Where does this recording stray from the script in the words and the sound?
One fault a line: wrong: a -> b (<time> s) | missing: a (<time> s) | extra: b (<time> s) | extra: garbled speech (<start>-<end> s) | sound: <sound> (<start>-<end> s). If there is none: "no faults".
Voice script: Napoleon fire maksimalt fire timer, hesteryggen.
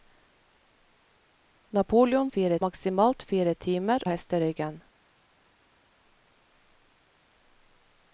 no faults